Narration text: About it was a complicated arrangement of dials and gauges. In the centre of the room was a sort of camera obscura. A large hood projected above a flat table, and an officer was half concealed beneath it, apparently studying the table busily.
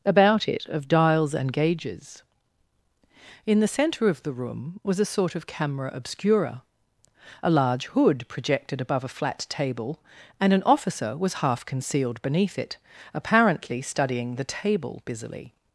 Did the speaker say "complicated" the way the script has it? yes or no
no